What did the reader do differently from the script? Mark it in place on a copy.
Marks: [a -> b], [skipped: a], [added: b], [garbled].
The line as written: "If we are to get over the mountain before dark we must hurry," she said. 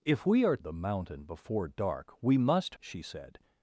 "If we are [skipped: to get over] the mountain before dark we must [skipped: hurry,"] she said.